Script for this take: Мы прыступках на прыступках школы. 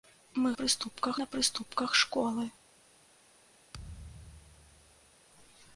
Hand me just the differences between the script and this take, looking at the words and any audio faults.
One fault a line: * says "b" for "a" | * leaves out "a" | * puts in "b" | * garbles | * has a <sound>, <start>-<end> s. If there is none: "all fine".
* has a thud, 3.7-5.2 s